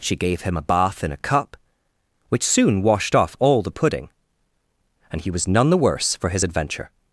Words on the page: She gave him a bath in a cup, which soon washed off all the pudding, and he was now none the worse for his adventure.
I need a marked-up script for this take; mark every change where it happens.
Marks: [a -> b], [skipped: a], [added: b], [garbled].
She gave him a bath in a cup, which soon washed off all the pudding, and he was [skipped: now] none the worse for his adventure.